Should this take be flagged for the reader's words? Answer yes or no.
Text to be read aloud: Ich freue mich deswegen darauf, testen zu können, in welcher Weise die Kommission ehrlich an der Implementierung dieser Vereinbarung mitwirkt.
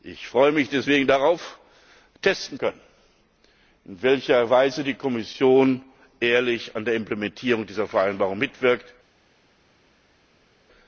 yes